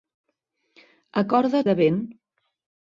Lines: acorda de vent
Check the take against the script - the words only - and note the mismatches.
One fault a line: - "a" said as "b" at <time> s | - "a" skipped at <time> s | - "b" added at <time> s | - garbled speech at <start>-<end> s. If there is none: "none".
none